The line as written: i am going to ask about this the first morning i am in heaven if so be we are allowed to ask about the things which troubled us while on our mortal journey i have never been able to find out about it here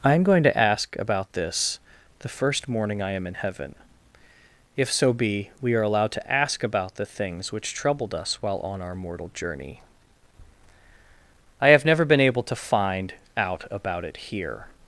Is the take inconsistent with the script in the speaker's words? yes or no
no